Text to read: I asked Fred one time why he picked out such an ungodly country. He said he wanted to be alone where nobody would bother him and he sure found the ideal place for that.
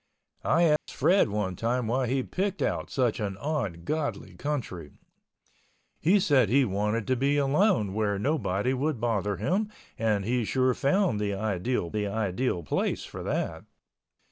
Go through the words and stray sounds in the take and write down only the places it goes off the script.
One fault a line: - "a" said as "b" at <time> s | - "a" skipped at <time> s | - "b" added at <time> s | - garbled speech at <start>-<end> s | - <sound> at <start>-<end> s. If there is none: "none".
- dropout at 0.8-0.9 s
- "the ideal" added at 11.9 s